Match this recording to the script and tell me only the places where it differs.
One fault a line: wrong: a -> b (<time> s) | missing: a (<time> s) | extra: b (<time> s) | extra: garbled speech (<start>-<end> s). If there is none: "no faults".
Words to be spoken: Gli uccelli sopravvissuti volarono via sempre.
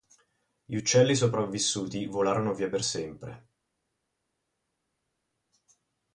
extra: per (2.7 s)